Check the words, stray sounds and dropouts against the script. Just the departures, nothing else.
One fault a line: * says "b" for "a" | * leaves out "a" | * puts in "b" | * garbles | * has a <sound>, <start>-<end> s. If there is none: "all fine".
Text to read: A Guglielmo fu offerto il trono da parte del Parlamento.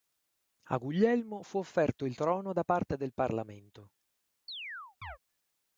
* has a chirp, 4.5-5.2 s